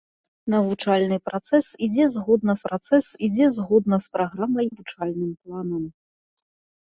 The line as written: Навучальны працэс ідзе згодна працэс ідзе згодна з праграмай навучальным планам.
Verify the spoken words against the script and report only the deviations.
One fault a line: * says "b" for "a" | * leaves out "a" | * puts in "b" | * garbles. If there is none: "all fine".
all fine